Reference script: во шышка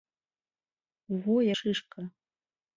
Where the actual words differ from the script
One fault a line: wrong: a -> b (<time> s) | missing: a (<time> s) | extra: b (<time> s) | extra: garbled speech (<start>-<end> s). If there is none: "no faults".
no faults